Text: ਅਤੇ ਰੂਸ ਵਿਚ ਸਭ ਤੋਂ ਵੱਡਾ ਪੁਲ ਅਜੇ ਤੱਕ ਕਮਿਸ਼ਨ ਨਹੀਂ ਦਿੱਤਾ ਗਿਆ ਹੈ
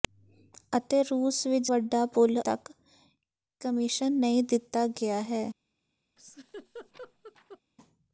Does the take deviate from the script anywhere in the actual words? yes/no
yes